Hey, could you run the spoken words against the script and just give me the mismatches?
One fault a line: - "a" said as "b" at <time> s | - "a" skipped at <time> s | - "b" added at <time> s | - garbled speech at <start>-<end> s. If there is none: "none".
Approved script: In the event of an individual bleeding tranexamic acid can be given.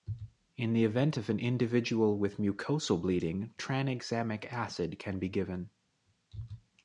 - "with mucosal" added at 2.2 s